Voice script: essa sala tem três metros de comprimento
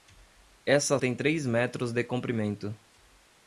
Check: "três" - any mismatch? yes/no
no